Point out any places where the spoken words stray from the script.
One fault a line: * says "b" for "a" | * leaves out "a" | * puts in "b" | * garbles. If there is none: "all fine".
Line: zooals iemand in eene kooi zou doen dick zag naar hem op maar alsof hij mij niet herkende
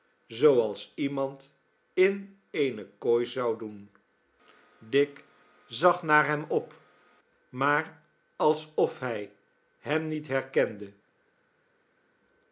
* says "hem" for "mij"